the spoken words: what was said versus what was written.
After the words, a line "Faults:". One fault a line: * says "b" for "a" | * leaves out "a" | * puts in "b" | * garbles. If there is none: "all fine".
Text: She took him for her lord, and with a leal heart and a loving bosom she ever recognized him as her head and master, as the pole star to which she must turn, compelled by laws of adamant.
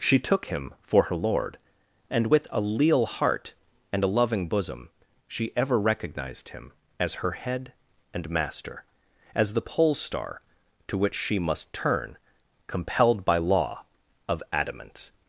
She took him for her lord, and with a leal heart and a loving bosom she ever recognized him as her head and master, as the pole star to which she must turn, compelled by law of adamant.
Faults:
* says "law" for "laws"